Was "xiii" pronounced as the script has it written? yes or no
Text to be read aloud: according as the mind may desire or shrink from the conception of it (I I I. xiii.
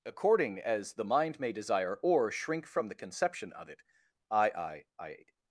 no